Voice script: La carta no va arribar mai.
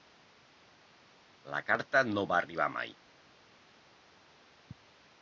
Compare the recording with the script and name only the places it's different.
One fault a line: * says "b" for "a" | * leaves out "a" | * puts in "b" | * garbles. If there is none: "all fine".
all fine